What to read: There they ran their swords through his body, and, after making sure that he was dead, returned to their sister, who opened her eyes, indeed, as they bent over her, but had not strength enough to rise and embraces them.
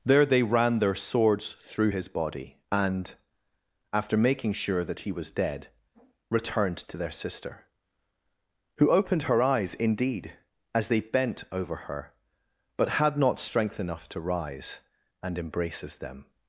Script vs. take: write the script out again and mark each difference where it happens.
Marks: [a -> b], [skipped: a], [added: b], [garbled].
There they ran their swords through his body, and, after making sure that he was dead, returned to their sister, who opened her eyes, indeed, as they bent over her, but had not strength enough to rise and embraces them.